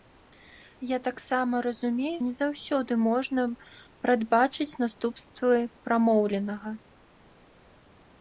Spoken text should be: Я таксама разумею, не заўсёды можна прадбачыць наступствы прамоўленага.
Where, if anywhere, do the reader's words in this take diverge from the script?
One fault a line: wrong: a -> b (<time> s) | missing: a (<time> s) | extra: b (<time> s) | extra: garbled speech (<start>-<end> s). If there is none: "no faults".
no faults